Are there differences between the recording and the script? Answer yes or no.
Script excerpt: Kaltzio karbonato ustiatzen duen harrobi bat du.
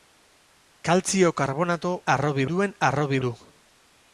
yes